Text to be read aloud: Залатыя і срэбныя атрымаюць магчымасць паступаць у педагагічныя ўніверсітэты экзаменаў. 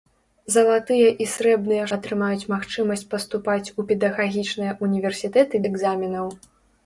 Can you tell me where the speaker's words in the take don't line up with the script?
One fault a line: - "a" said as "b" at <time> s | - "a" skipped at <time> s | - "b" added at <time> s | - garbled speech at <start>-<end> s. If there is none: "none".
none